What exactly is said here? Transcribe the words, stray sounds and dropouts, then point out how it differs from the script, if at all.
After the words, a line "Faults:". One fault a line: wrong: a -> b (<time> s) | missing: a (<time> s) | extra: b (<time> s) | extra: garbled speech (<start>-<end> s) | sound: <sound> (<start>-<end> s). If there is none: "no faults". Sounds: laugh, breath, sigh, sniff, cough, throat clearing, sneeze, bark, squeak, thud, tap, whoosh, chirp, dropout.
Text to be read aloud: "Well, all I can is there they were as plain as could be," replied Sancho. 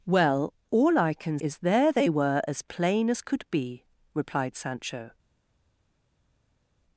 "Well, all I can is there they were as plain as could be," replied Sancho.
Faults:
no faults